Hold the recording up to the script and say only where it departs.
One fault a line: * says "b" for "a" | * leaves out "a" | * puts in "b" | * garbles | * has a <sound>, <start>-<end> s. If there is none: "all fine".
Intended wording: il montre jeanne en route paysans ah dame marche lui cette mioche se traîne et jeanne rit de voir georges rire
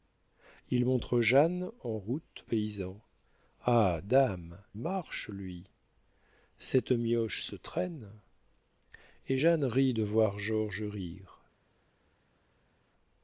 all fine